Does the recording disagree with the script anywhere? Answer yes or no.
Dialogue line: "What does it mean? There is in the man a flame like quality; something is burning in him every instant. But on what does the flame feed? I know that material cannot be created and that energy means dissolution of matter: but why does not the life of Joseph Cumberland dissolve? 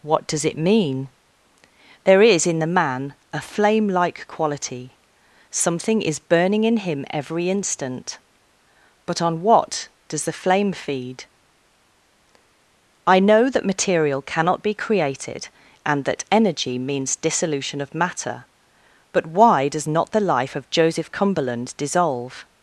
no